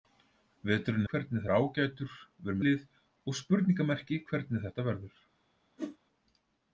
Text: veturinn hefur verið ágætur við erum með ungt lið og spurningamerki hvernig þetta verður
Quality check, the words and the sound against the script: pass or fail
fail